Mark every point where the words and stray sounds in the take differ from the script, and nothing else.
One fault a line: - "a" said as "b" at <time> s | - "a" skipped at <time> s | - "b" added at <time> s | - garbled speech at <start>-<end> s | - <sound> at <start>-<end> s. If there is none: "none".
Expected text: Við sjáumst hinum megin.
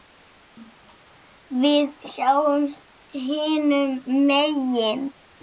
none